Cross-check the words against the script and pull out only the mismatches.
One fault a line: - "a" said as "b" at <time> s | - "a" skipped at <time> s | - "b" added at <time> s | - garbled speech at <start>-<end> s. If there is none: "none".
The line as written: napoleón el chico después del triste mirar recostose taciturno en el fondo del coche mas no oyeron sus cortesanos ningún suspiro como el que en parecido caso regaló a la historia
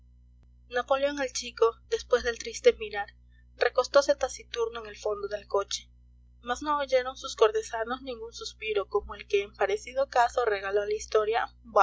none